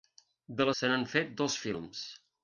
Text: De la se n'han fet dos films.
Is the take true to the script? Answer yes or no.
yes